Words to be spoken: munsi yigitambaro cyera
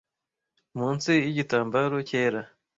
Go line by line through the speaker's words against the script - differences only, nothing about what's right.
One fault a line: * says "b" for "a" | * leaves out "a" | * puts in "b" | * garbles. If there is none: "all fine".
all fine